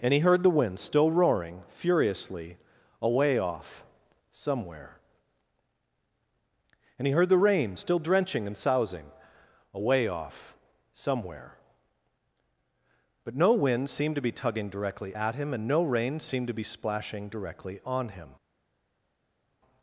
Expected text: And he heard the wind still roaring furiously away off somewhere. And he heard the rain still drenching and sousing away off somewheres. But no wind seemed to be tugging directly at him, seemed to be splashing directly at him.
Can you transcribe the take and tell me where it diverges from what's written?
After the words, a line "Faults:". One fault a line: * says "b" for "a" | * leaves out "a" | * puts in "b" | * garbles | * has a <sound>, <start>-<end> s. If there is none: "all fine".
And he heard the wind still roaring furiously away off somewhere. And he heard the rain still drenching and sousing away off somewhere. But no wind seemed to be tugging directly at him, and no rain seemed to be splashing directly on him.
Faults:
* says "somewhere" for "somewheres"
* puts in "and no rain"
* says "on" for "at"